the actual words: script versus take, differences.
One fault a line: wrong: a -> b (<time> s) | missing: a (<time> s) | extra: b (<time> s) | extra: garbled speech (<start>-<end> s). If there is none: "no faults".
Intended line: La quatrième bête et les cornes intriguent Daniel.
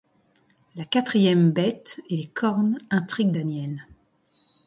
no faults